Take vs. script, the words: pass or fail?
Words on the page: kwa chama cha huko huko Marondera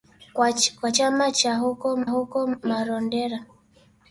pass